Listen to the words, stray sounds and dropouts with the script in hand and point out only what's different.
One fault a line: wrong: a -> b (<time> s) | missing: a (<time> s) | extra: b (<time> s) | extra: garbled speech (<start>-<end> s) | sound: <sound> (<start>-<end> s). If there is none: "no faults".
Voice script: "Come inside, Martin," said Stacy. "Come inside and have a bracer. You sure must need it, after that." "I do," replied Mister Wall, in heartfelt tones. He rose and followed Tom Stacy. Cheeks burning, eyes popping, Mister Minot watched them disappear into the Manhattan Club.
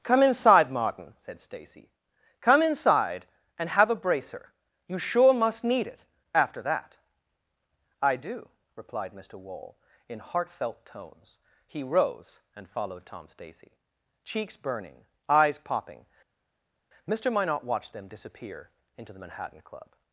no faults